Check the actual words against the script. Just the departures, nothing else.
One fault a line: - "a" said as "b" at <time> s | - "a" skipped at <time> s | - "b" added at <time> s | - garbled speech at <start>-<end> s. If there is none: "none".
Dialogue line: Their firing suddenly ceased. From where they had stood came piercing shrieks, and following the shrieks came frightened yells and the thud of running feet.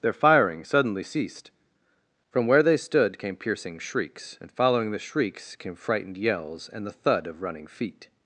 - "had" skipped at 2.8 s